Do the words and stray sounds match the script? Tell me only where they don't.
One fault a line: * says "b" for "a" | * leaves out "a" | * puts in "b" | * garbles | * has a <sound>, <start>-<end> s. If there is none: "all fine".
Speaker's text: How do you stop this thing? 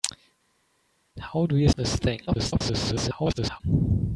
* leaves out "stop"
* garbles